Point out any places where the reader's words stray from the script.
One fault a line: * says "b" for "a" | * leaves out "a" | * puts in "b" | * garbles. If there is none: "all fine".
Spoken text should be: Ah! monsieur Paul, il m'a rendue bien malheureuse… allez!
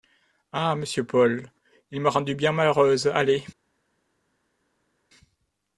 all fine